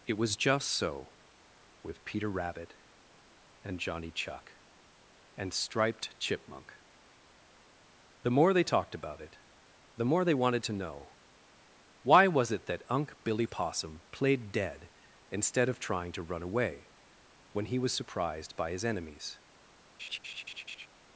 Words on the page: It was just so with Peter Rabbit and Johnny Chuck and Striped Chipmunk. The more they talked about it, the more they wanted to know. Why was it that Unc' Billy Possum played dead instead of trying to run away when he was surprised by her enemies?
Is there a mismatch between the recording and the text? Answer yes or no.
yes